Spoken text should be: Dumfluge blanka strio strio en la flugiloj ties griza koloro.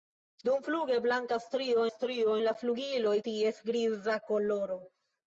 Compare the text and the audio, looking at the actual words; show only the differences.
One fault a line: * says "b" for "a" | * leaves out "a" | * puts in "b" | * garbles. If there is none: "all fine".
all fine